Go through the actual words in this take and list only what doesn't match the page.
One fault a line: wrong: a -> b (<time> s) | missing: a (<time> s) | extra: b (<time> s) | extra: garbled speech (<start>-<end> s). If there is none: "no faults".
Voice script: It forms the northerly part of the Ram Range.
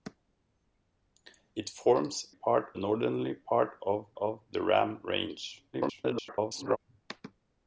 wrong: the -> part (2.3 s)
extra: of (4.2 s)
extra: garbled speech (5.7-6.8 s)